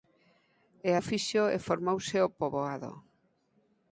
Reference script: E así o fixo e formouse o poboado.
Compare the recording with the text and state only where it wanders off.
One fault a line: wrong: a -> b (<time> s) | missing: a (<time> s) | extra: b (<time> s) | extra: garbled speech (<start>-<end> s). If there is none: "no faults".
missing: así (0.9 s)